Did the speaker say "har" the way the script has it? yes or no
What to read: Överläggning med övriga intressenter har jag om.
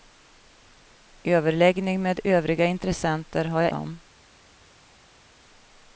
yes